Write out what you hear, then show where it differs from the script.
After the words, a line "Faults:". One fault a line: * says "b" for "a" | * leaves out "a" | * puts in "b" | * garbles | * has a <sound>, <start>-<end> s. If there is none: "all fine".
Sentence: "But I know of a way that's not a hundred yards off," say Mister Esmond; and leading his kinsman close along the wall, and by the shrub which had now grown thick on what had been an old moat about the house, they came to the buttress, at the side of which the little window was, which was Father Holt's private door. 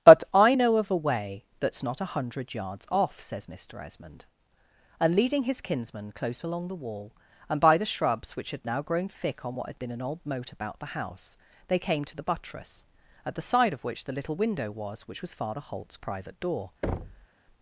"But I know of a way that's not a hundred yards off," says Mister Esmond; and leading his kinsman close along the wall, and by the shrubs which had now grown thick on what had been an old moat about the house, they came to the buttress, at the side of which the little window was, which was Father Holt's private door.
Faults:
* says "says" for "say"
* says "shrubs" for "shrub"
* has a thud, 16.8-17.3 s